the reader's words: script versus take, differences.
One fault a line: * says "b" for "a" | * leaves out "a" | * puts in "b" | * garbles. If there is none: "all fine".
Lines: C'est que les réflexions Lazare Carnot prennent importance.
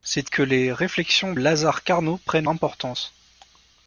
all fine